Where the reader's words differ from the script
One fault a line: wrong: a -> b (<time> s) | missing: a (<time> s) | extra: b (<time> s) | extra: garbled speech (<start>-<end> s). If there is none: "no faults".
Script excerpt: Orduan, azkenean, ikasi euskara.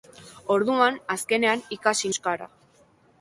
no faults